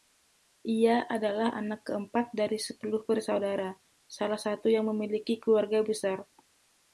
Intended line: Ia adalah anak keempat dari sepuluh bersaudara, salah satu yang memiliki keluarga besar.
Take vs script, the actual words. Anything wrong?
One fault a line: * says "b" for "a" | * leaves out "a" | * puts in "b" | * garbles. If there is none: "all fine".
all fine